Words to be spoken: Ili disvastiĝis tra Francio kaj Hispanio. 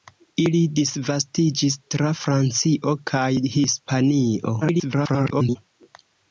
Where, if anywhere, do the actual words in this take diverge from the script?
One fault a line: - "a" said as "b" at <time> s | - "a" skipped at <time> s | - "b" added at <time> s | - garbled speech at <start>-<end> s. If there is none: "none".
- garbled speech at 4.6-5.6 s